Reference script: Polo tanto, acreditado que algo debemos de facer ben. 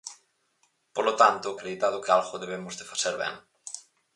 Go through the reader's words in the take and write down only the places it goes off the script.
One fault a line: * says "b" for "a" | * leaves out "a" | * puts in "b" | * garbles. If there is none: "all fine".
all fine